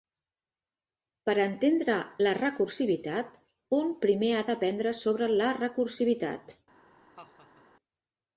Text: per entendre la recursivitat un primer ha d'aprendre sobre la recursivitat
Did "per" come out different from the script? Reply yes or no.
no